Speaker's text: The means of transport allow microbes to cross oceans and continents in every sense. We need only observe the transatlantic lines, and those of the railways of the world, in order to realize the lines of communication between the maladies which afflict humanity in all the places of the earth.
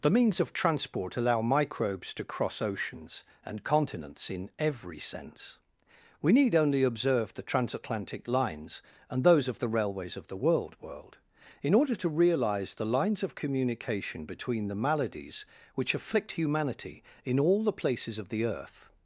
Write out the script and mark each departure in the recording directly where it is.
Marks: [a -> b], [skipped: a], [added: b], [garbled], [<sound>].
The means of transport allow microbes to cross oceans and continents in every sense. We need only observe the transatlantic lines, and those of the railways of the world, [added: world] in order to realize the lines of communication between the maladies which afflict humanity in all the places of the earth.